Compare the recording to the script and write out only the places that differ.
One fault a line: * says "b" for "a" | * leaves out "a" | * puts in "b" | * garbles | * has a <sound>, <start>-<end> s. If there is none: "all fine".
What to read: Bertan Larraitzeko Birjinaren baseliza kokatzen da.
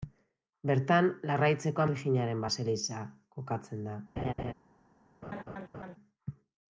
* has a laugh, 4.2-4.5 s
* has a laugh, 5.2-6.0 s